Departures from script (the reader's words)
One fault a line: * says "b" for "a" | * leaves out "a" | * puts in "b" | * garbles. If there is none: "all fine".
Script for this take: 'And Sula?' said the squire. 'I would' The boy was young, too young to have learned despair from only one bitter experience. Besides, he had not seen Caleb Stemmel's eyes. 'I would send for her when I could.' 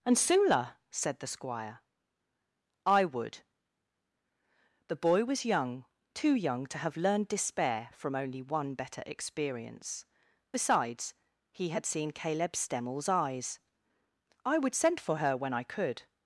* says "better" for "bitter"
* leaves out "not"